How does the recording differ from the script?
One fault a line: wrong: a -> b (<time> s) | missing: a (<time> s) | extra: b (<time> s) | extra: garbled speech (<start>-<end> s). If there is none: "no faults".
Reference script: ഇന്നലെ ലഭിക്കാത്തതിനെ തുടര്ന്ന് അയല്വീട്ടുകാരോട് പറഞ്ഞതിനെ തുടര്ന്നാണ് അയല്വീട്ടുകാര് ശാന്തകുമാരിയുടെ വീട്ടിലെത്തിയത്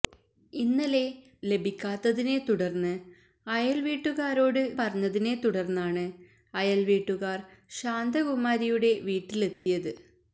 no faults